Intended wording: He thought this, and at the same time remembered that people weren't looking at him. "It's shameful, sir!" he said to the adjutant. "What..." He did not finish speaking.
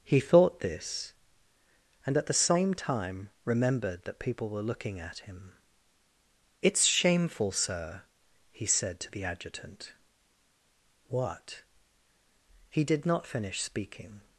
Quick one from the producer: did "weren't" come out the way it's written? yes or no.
no